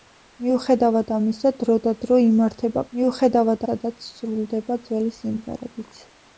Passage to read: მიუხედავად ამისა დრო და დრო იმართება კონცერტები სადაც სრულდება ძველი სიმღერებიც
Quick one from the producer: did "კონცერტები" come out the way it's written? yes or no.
no